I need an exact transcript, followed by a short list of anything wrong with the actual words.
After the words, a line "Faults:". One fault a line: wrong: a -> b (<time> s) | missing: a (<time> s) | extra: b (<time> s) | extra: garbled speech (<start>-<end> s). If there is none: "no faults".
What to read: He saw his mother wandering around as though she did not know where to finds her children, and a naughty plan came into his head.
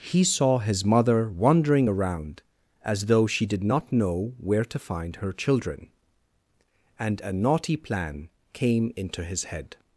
He saw his mother wandering around as though she did not know where to find her children, and a naughty plan came into his head.
Faults:
wrong: finds -> find (4.8 s)